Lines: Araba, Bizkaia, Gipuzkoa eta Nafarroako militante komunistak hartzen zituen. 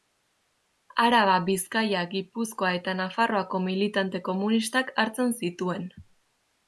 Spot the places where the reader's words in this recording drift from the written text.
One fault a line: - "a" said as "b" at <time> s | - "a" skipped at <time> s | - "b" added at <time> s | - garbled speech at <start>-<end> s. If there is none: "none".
none